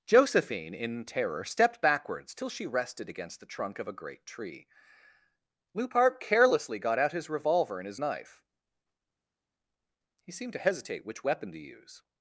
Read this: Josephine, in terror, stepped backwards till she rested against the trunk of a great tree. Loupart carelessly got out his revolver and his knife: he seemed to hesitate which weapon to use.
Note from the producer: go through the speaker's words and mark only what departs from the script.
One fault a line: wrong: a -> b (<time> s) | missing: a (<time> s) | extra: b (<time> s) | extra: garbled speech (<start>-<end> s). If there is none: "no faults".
no faults